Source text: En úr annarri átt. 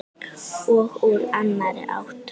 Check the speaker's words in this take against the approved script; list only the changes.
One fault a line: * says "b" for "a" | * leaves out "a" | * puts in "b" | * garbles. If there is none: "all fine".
* says "Og" for "En"